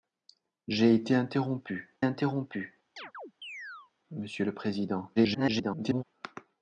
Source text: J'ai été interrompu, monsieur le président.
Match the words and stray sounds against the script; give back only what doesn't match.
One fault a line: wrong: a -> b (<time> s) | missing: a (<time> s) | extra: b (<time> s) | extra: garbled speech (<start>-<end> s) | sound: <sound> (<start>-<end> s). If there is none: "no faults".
extra: interrompu (2.0 s)
sound: chirp (3.0-3.9 s)
extra: garbled speech (5.2-6.0 s)